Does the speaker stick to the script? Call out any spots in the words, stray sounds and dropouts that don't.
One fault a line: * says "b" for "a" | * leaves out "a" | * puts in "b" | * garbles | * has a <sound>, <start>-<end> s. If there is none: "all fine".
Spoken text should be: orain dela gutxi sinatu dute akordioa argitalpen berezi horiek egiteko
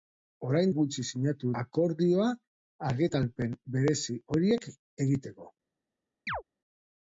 * leaves out "dela"
* leaves out "dute"
* has a chirp, 6.3-6.4 s